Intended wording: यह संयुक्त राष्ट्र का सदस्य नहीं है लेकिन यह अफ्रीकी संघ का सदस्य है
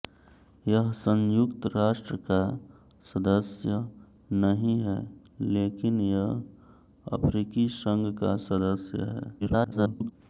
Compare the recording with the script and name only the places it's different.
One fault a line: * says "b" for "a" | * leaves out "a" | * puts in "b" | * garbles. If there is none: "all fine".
* garbles